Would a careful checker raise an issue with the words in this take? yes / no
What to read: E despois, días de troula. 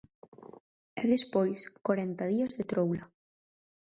yes